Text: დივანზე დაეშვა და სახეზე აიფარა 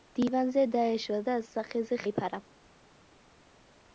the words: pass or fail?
pass